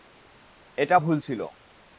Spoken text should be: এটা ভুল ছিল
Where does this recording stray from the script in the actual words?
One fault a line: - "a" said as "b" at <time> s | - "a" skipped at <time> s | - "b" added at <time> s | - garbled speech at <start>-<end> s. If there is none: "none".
none